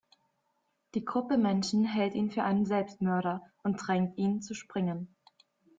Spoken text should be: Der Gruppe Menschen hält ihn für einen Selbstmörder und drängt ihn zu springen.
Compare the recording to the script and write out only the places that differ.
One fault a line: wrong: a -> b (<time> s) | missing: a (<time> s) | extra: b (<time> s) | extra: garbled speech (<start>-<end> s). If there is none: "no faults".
wrong: Der -> Die (0.9 s)